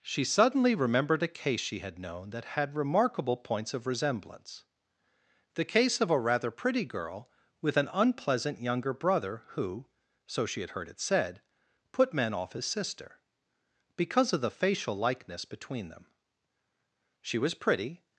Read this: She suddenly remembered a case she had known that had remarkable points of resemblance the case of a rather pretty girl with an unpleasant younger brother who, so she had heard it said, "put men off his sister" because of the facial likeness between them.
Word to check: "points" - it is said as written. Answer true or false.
true